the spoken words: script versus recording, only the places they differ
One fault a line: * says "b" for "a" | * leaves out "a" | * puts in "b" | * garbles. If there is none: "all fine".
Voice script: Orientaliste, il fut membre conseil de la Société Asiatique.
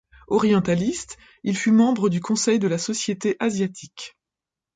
* puts in "du"